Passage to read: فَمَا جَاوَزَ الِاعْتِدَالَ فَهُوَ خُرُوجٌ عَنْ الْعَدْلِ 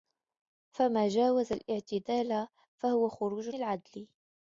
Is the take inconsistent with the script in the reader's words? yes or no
yes